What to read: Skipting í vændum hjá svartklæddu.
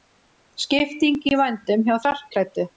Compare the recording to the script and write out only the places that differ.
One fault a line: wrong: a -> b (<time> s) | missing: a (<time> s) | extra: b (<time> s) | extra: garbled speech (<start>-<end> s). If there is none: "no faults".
no faults